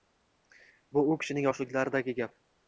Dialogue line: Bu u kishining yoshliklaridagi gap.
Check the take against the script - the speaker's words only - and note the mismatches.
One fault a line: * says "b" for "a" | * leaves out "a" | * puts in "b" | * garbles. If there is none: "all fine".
all fine